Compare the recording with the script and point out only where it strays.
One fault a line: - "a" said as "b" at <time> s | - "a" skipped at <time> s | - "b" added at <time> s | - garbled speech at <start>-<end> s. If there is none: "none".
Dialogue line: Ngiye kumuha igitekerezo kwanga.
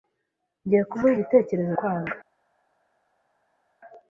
none